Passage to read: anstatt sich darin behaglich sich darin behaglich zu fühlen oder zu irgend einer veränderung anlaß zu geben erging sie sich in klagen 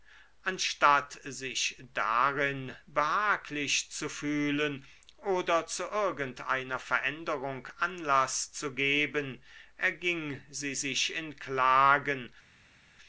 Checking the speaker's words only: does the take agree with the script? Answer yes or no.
no